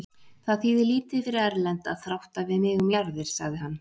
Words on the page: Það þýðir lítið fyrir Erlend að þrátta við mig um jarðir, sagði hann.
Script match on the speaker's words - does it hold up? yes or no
yes